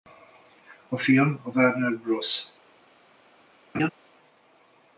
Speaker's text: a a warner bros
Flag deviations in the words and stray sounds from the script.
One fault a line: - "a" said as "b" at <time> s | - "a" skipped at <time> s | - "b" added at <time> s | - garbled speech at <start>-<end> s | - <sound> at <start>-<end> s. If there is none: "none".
- "film" added at 1.0 s
- laugh at 3.7-3.9 s